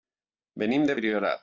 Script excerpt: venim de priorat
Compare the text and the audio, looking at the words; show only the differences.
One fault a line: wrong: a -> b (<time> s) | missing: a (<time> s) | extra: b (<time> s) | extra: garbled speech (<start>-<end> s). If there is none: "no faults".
no faults